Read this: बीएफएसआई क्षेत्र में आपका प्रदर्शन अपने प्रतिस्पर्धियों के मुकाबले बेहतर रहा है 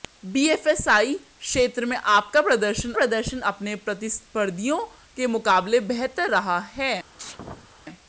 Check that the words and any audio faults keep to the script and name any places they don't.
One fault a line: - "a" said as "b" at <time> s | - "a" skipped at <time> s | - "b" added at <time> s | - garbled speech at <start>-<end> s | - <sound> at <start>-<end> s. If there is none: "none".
- "प्रदर्शन" added at 2.9 s
- sneeze at 7.2-7.7 s